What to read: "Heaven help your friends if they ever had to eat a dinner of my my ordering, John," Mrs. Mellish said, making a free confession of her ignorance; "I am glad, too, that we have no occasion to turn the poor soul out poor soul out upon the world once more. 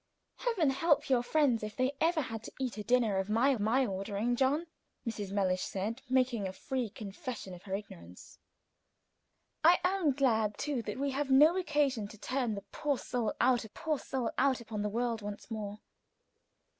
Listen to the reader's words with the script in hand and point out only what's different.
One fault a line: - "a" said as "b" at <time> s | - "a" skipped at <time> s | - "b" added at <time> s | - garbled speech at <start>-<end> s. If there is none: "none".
none